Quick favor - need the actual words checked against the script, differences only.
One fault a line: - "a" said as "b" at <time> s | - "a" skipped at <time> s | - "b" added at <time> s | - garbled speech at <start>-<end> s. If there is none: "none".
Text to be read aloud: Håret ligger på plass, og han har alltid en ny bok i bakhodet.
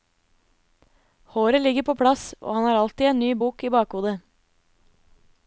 none